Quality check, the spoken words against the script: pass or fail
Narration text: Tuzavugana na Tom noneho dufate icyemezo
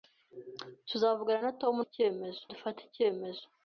fail